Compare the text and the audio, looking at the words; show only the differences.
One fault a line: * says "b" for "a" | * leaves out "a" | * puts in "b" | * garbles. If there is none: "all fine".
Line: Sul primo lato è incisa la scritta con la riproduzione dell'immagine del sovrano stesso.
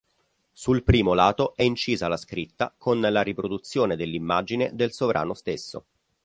all fine